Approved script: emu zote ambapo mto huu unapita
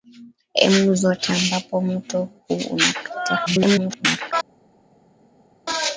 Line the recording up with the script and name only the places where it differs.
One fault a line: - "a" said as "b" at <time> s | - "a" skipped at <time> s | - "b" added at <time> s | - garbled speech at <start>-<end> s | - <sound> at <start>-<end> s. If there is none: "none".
- garbled speech at 3.5-4.3 s